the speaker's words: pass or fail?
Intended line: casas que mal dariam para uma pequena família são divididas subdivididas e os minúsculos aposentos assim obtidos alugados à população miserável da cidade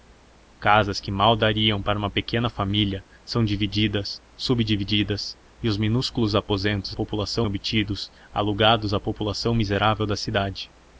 fail